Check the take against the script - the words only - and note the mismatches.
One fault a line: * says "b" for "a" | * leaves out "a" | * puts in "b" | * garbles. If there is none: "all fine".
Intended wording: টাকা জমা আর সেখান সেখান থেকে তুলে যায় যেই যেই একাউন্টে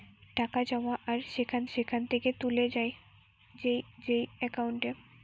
all fine